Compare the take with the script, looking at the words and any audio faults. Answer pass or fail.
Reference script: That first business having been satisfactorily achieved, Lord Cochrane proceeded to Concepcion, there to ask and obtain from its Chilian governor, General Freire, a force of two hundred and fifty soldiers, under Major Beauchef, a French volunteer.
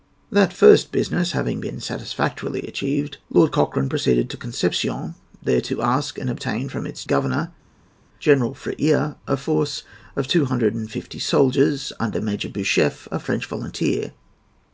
fail